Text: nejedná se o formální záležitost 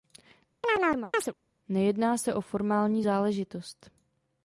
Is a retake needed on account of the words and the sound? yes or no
yes